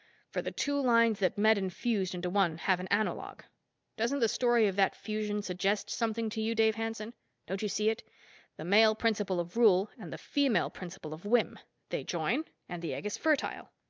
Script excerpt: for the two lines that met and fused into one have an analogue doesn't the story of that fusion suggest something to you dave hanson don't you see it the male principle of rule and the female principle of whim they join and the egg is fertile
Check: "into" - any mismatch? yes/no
no